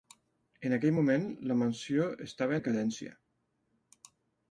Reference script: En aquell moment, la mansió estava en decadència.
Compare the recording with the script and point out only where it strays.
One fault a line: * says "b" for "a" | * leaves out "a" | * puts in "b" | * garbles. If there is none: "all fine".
* leaves out "en"